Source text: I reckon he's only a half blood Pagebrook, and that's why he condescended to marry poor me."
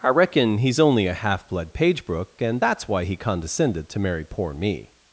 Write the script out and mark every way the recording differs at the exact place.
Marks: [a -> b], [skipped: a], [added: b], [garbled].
I reckon he's only a half blood Pagebrook, and that's why he condescended to marry poor me."